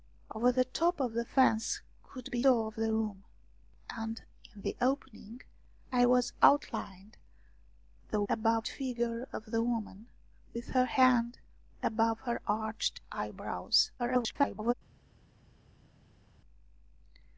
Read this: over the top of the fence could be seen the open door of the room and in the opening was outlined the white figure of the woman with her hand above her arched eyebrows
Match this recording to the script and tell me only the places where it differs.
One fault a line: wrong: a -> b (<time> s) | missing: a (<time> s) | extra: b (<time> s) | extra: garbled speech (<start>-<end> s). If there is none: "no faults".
missing: seen the open (2.4 s)
wrong: white -> above (8.3 s)
extra: garbled speech (14.0-14.7 s)